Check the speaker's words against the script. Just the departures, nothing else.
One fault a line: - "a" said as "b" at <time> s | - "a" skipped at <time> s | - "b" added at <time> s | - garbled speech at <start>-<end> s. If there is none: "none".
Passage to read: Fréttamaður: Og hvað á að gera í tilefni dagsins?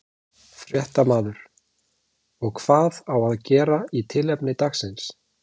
none